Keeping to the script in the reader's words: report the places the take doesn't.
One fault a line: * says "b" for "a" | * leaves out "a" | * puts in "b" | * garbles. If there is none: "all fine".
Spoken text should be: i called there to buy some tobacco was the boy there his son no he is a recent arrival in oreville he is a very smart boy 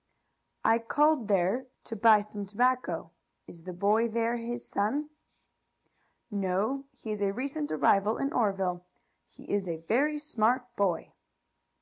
* says "is" for "was"